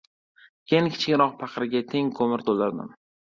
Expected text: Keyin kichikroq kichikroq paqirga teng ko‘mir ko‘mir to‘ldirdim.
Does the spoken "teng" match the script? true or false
true